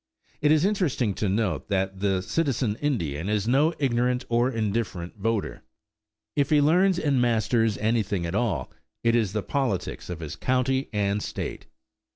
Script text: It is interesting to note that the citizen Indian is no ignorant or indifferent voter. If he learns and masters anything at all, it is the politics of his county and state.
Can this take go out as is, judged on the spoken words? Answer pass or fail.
pass